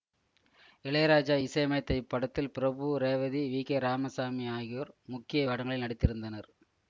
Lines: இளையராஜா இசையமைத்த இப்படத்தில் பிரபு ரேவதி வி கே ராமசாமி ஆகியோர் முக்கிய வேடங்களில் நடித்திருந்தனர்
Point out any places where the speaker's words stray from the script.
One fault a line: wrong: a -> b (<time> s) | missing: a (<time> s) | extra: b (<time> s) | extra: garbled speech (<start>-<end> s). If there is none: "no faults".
no faults